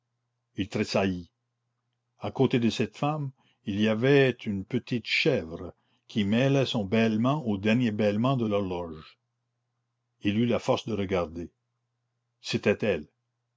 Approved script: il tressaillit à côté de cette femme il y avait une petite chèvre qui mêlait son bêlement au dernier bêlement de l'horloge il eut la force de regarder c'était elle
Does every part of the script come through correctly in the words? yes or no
yes